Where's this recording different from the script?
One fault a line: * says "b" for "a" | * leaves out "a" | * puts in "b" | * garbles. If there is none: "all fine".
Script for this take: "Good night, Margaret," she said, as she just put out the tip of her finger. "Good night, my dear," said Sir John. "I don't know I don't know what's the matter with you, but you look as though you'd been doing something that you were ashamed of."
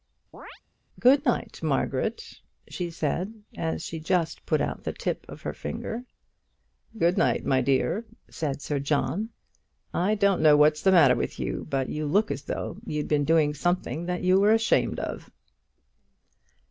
* leaves out "I don't know"